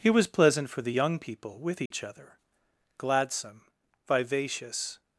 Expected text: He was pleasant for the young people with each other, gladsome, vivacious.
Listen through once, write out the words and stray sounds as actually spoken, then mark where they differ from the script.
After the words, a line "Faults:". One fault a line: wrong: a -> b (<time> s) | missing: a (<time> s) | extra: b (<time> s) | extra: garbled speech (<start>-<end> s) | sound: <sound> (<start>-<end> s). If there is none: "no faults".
He was pleasant for the young people with each other, gladsome, vivacious.
Faults:
sound: dropout (1.9-1.9 s)